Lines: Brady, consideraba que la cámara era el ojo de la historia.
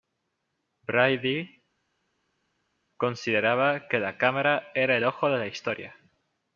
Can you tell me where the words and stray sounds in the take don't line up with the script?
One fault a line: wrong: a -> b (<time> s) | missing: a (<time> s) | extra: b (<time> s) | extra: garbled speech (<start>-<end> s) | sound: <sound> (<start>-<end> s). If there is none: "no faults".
no faults